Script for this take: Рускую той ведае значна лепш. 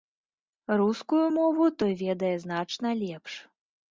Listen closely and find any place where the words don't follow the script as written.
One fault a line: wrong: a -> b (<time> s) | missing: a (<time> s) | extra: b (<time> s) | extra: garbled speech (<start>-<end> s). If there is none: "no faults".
extra: мову (1.4 s)